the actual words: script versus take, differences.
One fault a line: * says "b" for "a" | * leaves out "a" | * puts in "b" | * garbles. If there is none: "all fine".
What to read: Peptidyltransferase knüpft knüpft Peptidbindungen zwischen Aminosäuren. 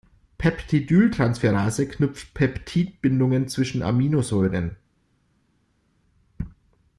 * leaves out "knüpft"